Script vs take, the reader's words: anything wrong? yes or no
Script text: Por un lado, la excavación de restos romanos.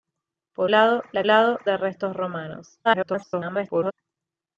yes